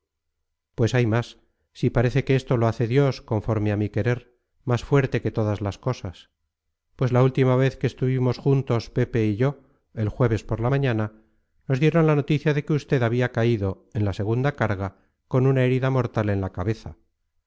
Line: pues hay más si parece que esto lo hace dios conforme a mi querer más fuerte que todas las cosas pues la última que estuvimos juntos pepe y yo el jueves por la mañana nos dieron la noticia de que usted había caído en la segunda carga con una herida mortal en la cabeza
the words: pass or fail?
fail